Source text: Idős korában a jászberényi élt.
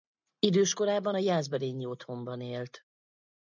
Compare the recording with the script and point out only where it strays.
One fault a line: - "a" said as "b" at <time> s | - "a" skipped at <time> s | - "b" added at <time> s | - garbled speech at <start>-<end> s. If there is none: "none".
- "otthonban" added at 1.9 s